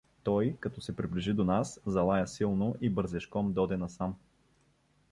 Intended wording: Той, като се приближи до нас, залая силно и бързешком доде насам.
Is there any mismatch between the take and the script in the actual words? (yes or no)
no